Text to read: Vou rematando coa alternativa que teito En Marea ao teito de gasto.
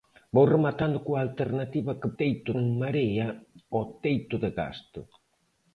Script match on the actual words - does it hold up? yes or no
yes